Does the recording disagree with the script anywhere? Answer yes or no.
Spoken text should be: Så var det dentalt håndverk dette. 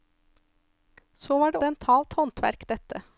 no